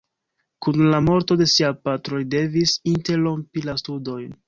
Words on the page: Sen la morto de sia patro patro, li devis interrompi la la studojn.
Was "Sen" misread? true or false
true